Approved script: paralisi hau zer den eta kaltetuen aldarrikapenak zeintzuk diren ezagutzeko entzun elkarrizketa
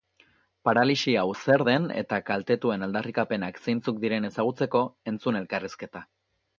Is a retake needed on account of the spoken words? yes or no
no